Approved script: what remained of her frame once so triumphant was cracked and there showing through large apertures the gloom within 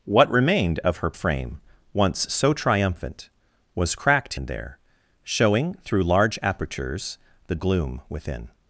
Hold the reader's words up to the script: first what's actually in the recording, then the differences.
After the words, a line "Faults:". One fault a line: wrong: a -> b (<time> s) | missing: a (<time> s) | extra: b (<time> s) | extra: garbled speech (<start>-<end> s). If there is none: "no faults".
what remained of her frame once so triumphant was cracked and there showing through large apertures the gloom within
Faults:
no faults